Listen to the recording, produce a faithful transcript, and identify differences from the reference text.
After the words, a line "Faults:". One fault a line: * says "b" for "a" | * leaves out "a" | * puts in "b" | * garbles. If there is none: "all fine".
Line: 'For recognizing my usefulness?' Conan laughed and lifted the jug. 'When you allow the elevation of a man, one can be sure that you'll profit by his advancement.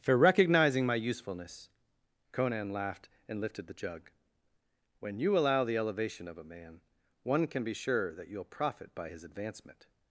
'For recognizing my usefulness?' Conan laughed and lifted the jug. 'When you allow the elevation of a man, one can be sure that you'll profit by his advancement.
Faults:
all fine